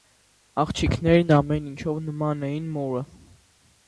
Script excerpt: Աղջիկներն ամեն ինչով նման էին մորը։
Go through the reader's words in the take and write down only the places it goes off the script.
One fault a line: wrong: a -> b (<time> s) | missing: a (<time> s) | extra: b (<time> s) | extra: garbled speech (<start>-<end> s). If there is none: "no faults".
no faults